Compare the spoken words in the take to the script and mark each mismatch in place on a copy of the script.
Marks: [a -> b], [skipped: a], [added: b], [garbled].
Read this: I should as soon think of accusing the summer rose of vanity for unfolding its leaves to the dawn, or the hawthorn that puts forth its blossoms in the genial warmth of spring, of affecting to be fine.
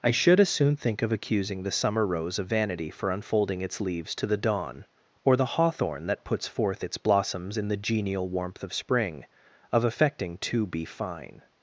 I should as soon think of accusing the summer rose of vanity for unfolding its leaves to the dawn, or the hawthorn that puts forth its blossoms in the genial warmth of spring, of affecting to be fine.